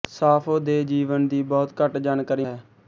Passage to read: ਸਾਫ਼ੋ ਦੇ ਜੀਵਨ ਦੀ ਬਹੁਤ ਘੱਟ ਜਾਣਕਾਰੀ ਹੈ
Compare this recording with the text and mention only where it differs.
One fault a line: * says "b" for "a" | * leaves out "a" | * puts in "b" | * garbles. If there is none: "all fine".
all fine